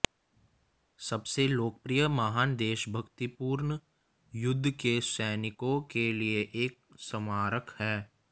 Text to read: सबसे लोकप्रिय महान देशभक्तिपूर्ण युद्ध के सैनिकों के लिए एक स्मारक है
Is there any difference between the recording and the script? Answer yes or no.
no